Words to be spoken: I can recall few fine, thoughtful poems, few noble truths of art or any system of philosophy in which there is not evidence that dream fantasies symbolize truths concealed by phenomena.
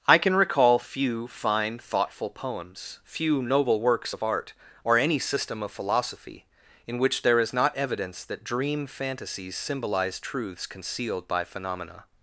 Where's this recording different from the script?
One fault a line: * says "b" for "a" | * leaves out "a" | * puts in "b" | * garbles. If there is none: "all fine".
* says "works" for "truths"